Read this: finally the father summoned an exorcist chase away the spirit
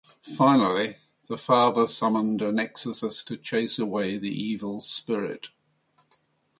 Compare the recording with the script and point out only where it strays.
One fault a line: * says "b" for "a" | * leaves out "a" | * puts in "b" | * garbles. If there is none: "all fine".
* puts in "to"
* puts in "evil"